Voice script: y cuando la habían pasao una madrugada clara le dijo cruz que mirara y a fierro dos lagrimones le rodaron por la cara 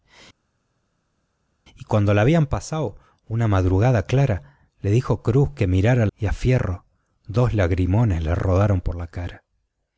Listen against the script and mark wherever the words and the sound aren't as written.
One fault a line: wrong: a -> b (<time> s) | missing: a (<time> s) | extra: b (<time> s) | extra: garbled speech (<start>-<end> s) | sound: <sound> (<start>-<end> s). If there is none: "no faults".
no faults